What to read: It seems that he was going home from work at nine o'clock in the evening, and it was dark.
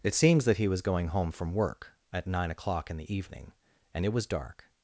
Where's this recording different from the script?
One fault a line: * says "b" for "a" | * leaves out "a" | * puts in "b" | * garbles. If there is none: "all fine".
all fine